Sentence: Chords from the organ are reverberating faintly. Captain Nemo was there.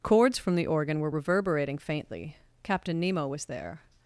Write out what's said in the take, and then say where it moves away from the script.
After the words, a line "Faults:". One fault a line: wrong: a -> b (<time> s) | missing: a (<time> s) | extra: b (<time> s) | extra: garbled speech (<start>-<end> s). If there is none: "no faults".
Chords from the organ were reverberating faintly. Captain Nemo was there.
Faults:
wrong: are -> were (1.0 s)